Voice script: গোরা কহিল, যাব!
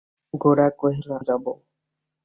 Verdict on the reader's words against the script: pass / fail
pass